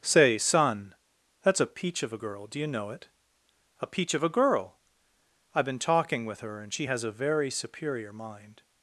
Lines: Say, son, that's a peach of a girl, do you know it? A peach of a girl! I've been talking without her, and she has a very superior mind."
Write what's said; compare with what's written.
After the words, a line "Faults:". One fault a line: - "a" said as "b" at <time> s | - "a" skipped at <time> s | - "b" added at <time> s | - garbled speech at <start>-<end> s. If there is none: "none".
Say, son, that's a peach of a girl, do you know it? A peach of a girl! I've been talking with her, and she has a very superior mind."
Faults:
- "without" said as "with" at 6.2 s